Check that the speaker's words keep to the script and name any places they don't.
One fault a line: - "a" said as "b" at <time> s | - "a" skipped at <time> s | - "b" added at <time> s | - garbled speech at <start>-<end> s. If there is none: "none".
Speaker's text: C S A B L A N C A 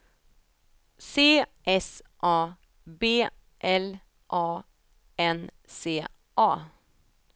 none